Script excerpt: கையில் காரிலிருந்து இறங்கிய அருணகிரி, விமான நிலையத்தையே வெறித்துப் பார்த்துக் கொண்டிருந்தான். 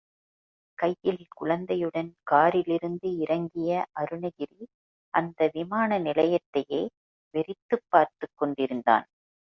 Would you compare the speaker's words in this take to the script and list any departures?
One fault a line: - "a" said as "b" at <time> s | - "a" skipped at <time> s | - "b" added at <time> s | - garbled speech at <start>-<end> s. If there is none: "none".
- "குழந்தையுடன்" added at 1.3 s
- "அந்த" added at 5.1 s